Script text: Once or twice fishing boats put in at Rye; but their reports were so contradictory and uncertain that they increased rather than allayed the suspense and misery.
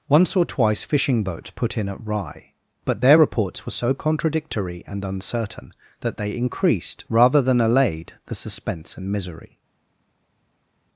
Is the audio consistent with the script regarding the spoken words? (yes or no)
yes